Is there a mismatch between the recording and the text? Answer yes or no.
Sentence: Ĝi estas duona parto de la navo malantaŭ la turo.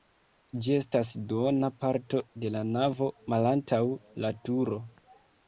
no